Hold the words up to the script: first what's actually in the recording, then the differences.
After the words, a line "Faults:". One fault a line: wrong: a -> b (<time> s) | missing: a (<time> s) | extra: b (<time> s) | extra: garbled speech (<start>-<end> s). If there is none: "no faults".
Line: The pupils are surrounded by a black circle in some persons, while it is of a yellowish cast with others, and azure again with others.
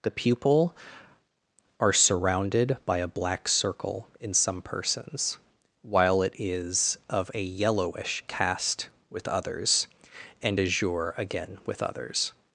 The pupil are surrounded by a black circle in some persons, while it is of a yellowish cast with others, and azure again with others.
Faults:
wrong: pupils -> pupil (0.1 s)